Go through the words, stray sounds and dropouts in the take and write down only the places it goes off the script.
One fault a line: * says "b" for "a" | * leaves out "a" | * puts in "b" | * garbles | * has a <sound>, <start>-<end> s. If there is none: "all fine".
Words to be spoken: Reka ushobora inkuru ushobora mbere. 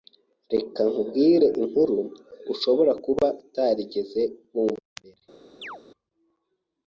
* says "nkubwire" for "ushobora"
* puts in "kuba utarigeze wumva"
* has a chirp, 5.6-5.8 s